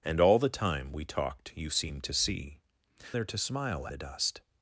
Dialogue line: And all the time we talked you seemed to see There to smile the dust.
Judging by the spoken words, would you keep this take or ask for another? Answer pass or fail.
pass